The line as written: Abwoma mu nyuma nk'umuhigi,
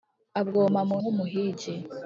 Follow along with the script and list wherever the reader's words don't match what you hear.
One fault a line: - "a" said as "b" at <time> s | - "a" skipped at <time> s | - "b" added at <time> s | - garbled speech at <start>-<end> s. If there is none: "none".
- "nyuma" skipped at 1.0 s